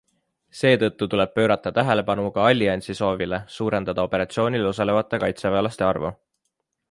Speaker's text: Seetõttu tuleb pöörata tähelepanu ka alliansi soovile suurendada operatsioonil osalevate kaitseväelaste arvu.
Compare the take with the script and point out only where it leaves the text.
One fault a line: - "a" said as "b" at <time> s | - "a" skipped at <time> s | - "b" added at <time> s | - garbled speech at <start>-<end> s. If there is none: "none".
none